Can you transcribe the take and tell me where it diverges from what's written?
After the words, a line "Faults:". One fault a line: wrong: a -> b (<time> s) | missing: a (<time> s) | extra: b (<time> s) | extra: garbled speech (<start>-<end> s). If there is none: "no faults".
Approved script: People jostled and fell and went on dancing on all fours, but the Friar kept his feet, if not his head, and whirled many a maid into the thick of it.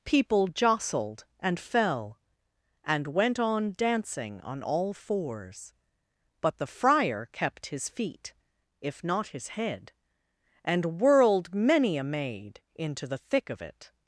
People jostled and fell and went on dancing on all fours, but the Friar kept his feet, if not his head, and whirled many a maid into the thick of it.
Faults:
no faults